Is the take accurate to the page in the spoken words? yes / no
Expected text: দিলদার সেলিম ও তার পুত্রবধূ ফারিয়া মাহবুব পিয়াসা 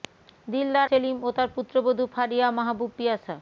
yes